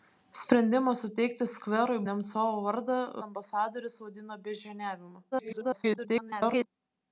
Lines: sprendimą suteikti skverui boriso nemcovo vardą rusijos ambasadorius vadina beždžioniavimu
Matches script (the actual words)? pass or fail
fail